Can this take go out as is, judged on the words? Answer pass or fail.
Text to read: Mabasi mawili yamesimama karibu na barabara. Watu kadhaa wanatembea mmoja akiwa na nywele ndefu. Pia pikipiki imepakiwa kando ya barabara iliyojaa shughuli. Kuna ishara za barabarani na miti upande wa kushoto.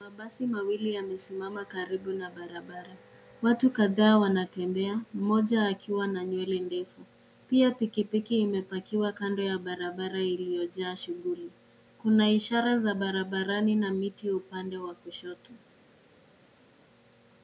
pass